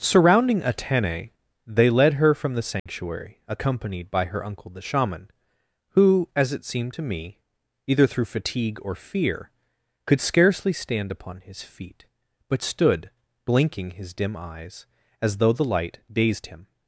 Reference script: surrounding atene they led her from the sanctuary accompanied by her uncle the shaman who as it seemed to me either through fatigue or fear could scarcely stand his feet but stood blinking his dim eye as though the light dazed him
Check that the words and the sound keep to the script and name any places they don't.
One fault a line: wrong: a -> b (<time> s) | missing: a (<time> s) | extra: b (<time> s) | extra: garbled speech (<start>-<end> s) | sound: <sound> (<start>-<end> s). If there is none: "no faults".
sound: dropout (2.8-2.9 s)
extra: upon (11.1 s)
wrong: eye -> eyes (14.4 s)